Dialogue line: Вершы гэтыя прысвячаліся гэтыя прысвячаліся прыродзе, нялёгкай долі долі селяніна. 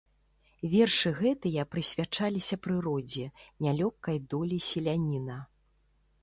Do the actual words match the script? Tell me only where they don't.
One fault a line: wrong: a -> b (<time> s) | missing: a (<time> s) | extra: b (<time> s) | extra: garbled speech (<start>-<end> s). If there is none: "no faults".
missing: гэтыя прысвячаліся (2.5 s)
missing: долі (4.6 s)